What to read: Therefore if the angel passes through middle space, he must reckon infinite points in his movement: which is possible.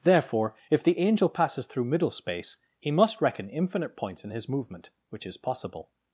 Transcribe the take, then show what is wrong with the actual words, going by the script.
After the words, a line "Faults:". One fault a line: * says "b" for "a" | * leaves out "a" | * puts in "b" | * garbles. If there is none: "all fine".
Therefore if the angel passes through middle space, he must reckon infinite points in his movement: which is possible.
Faults:
all fine